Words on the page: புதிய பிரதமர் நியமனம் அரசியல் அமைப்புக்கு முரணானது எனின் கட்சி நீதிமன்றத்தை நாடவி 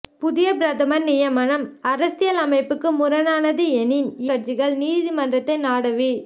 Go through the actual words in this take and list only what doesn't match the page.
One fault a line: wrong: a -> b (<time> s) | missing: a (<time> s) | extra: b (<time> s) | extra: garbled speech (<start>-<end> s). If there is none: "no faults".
no faults